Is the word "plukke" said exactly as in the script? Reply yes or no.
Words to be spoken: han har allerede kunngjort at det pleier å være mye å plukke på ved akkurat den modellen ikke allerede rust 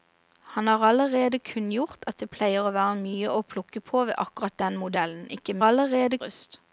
yes